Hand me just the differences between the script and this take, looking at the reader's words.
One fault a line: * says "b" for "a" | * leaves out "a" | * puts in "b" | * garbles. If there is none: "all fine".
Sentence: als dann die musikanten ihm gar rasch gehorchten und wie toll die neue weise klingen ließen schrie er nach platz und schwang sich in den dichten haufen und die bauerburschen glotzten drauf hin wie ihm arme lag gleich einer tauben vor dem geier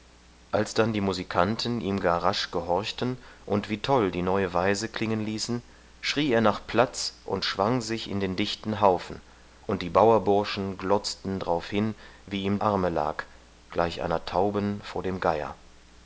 all fine